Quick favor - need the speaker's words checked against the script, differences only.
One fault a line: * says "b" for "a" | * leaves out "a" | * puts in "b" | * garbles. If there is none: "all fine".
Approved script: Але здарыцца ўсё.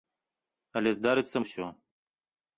all fine